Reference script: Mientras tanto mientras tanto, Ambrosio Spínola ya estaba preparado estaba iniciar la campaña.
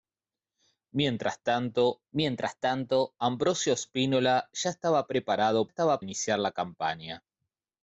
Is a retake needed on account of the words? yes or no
no